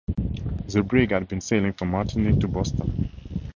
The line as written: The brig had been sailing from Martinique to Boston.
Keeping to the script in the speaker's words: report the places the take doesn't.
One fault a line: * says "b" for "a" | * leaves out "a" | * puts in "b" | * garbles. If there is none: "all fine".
all fine